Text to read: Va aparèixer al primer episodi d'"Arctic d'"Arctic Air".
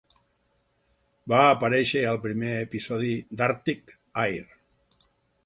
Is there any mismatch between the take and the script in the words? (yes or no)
yes